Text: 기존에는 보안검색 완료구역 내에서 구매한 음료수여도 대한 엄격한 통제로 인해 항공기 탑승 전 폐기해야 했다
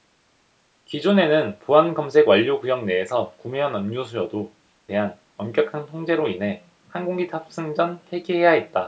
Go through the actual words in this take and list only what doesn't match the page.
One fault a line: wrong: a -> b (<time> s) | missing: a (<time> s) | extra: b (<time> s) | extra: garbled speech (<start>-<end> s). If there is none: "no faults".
no faults